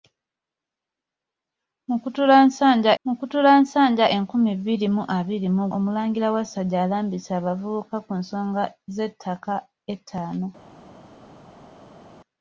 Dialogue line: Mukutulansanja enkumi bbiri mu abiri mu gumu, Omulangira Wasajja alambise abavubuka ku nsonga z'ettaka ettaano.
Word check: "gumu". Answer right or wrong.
wrong